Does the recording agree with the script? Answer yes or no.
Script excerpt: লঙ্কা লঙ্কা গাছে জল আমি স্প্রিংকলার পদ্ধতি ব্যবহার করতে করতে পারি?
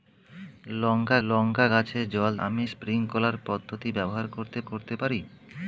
yes